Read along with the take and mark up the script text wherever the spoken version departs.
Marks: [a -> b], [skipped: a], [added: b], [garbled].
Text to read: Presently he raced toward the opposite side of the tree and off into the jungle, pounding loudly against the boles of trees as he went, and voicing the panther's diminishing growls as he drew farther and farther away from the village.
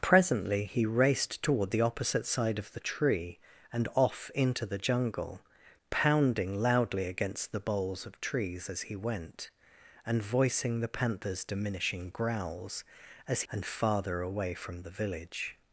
Presently he raced toward the opposite side of the tree and off into the jungle, pounding loudly against the boles of trees as he went, and voicing the panther's diminishing growls as [skipped: he drew farther] and farther away from the village.